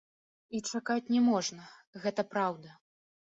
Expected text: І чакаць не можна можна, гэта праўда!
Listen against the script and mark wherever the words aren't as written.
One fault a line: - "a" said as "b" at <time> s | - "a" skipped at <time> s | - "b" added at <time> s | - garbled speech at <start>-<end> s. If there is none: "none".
- "можна" skipped at 1.7 s